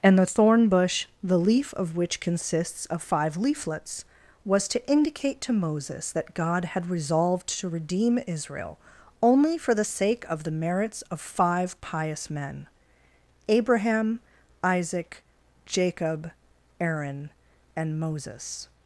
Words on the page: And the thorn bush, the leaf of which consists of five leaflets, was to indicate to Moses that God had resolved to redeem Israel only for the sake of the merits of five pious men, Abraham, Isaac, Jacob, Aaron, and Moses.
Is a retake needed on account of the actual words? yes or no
no